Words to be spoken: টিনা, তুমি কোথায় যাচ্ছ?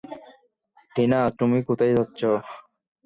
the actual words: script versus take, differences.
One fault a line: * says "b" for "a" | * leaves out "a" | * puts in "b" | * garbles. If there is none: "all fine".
all fine